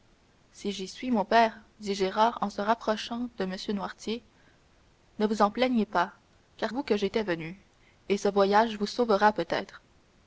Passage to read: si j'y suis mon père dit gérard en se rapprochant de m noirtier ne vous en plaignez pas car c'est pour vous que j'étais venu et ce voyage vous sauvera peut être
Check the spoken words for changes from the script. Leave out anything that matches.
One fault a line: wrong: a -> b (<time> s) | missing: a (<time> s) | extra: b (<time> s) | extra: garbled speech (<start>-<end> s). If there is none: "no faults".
missing: c'est pour (6.7 s)